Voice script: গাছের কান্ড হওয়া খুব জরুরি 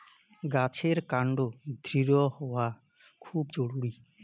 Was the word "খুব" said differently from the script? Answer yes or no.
no